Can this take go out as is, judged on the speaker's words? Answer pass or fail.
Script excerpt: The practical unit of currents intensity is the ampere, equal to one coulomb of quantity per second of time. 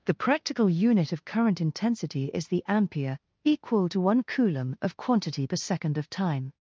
fail